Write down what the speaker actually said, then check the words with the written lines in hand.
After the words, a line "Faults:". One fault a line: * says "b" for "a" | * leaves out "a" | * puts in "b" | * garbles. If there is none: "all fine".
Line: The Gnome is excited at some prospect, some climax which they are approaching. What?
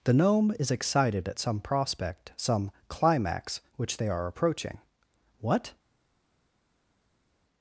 The Gnome is excited at some prospect, some climax which they are approaching. What?
Faults:
all fine